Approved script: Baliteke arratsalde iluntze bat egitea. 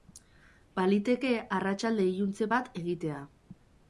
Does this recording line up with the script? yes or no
yes